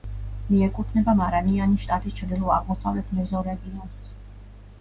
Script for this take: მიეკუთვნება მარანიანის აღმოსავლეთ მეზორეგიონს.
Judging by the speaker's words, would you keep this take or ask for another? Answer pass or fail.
fail